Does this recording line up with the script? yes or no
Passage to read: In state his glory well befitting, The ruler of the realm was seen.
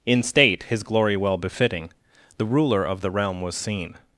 yes